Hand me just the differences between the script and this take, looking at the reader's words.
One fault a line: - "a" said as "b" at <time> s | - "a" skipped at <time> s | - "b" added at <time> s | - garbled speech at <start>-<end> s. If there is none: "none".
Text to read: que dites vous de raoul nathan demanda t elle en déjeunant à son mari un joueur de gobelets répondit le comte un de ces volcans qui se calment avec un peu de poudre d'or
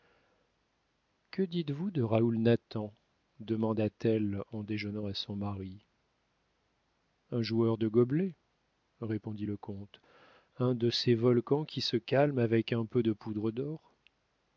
none